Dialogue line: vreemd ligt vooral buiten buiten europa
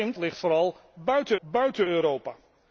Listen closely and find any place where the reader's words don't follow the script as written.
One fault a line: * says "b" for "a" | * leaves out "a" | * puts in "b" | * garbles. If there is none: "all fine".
all fine